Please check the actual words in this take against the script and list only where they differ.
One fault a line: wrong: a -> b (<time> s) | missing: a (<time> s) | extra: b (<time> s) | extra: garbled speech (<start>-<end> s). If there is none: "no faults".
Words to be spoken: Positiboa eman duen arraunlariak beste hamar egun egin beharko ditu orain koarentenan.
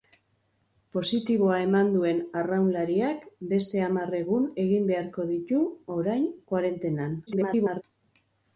extra: garbled speech (7.3-7.8 s)